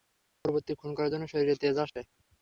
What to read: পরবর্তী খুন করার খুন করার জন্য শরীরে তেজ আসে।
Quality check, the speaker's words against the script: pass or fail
fail